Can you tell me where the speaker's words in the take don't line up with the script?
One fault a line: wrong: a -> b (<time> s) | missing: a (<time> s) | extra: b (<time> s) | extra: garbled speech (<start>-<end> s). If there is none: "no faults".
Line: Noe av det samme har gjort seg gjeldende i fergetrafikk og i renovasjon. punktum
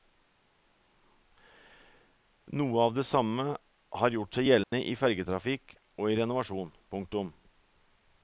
no faults